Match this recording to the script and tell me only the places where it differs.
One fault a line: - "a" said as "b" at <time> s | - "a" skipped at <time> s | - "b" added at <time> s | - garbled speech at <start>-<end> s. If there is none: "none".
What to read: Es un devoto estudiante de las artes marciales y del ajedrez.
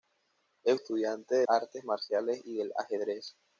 - "un devoto" skipped at 0.8 s
- "las" skipped at 1.5 s